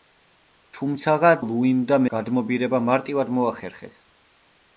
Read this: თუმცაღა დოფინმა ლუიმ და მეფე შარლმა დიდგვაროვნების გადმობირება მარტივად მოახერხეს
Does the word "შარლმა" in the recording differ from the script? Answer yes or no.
yes